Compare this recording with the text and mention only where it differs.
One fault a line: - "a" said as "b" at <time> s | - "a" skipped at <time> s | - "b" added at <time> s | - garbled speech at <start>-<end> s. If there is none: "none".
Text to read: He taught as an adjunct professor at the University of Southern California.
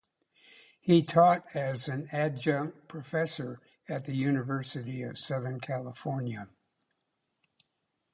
none